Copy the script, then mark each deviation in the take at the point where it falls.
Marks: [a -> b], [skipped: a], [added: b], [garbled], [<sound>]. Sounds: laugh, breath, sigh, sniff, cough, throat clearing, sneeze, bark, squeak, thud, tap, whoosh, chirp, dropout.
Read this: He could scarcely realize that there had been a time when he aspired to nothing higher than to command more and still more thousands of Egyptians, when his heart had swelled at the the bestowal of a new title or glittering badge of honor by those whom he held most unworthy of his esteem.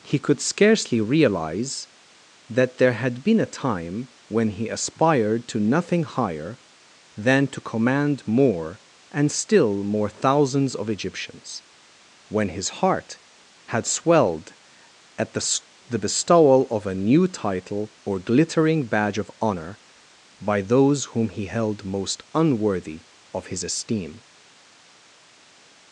He could scarcely realize that there had been a time when he aspired to nothing higher than to command more and still more thousands of Egyptians, when his heart had swelled at the the bestowal of a new title or glittering badge of honor by those whom he held most unworthy of his esteem.